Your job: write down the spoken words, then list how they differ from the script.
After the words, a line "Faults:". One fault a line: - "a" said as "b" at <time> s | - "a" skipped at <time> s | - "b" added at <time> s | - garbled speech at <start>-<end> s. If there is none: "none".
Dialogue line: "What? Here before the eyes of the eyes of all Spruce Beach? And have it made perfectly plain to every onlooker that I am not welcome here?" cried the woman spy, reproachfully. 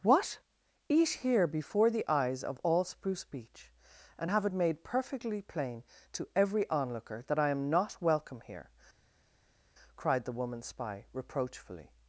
"What? Eat here before the eyes of all Spruce Beach? And have it made perfectly plain to every onlooker that I am not welcome here?" cried the woman spy, reproachfully.
Faults:
- "Eat" added at 0.9 s
- "the eyes of" skipped at 2.6 s